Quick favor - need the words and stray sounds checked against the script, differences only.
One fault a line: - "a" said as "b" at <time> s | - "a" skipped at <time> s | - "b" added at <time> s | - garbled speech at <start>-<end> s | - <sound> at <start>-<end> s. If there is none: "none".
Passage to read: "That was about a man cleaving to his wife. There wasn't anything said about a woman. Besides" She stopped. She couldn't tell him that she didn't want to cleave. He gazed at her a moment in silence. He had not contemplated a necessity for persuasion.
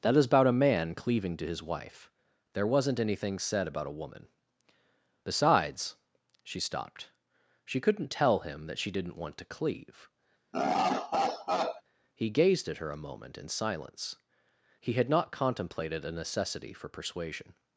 - "was" said as "is" at 0.2 s
- laugh at 10.5-11.8 s